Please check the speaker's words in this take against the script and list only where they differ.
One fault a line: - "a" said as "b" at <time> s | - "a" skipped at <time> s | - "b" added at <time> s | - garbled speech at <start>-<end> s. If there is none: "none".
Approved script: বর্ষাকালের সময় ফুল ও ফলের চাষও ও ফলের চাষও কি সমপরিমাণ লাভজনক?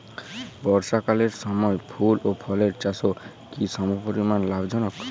- "ও ফলের চাষও" skipped at 3.1 s